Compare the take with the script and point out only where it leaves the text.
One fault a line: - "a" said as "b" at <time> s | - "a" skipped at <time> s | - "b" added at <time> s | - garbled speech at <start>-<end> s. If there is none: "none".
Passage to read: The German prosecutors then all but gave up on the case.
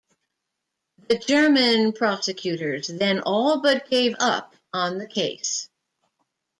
none